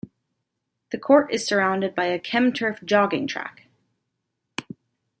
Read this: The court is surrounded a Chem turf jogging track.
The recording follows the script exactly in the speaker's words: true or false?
false